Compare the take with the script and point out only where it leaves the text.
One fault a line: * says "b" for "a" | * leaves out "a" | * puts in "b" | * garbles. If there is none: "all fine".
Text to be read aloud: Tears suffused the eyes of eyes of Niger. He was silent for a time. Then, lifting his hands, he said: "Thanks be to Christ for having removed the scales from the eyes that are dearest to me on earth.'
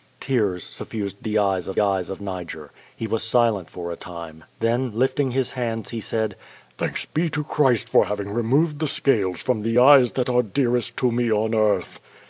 all fine